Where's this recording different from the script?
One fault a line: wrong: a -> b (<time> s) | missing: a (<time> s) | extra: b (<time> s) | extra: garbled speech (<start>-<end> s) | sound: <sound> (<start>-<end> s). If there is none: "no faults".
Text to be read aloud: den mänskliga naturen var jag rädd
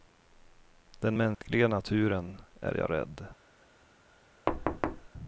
sound: dropout (1.3-1.4 s)
wrong: var -> är (2.6 s)
sound: thud (4.5-5.1 s)